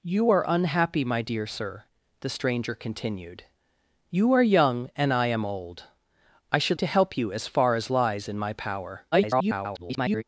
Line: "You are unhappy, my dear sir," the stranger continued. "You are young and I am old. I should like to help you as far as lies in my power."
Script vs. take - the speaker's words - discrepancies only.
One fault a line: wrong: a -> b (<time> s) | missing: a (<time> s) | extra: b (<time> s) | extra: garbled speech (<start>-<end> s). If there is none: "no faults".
missing: like (6.8 s)
extra: garbled speech (9.1-10.2 s)